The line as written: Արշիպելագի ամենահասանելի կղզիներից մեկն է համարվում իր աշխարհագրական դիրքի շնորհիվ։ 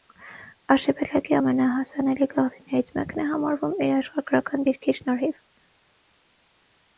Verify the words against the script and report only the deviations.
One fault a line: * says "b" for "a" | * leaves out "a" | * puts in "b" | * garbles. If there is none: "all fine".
all fine